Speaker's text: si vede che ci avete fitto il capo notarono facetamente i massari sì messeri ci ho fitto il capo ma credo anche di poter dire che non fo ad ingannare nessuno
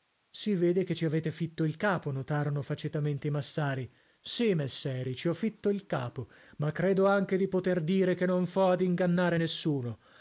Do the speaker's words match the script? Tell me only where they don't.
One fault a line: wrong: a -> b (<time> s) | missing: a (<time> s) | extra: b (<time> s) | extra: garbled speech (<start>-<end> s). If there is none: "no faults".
no faults